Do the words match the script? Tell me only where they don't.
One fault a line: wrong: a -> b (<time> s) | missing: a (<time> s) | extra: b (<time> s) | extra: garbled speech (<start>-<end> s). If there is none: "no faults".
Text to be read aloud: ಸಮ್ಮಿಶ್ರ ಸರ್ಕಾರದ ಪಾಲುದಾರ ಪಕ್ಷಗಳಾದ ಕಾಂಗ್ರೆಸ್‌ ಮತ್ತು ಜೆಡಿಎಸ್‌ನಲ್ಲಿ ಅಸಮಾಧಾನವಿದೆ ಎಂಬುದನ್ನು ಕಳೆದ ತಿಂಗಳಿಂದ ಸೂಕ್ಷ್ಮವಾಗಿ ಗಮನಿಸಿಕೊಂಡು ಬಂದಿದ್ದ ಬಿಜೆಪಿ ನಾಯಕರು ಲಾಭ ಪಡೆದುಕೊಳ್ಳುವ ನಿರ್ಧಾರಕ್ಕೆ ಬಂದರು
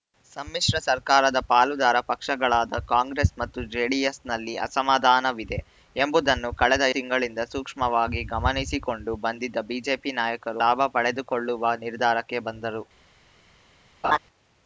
no faults